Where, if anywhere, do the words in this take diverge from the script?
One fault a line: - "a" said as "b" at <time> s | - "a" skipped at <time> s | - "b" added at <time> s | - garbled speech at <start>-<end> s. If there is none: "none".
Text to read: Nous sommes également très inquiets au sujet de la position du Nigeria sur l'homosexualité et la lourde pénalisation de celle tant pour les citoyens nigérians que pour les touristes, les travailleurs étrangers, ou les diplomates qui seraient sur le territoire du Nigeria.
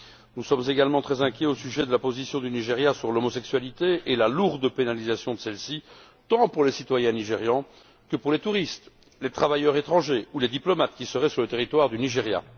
- "ci" added at 5.6 s